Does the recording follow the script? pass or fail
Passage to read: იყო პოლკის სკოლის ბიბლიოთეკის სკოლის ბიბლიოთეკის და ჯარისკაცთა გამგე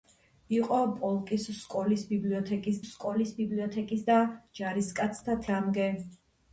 pass